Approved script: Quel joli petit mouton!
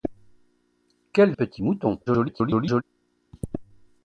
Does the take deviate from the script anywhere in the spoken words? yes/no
yes